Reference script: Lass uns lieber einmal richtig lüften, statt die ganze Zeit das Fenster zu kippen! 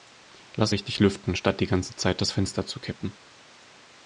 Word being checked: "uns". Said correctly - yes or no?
no